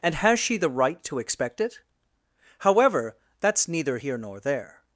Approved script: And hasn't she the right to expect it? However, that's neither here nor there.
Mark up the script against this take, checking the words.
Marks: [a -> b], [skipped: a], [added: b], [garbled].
And [hasn't -> has] she the right to expect it? However, that's neither here nor there.